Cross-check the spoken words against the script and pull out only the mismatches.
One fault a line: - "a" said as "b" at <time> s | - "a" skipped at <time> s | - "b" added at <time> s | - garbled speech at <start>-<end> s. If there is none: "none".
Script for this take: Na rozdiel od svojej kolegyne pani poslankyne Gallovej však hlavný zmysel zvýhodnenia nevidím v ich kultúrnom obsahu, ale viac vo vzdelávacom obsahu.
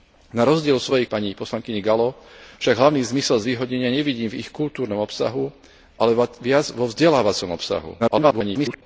- "kolegyne" skipped at 1.1 s
- garbled speech at 8.0-8.8 s